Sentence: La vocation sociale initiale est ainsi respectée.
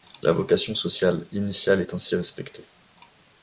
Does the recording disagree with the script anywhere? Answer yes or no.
no